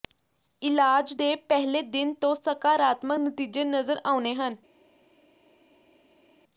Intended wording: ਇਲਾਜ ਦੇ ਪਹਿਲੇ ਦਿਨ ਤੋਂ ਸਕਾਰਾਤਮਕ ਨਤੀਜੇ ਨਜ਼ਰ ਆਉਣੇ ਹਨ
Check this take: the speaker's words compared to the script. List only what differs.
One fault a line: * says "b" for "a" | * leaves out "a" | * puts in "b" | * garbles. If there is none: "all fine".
all fine